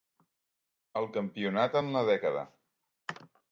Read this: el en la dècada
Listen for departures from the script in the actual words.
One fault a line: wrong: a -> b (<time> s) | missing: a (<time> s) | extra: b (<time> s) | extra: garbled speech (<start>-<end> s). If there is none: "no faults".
extra: campionat (1.2 s)